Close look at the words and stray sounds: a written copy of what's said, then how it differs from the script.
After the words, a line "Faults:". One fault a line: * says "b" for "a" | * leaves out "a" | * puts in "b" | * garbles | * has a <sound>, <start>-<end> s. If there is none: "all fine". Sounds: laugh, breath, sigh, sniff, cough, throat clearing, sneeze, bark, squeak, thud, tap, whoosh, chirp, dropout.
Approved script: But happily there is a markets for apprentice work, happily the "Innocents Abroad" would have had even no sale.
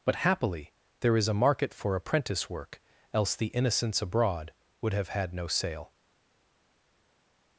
But happily there is a market for apprentice work, else the "Innocents Abroad" would have had no sale.
Faults:
* says "market" for "markets"
* says "else" for "happily"
* leaves out "even"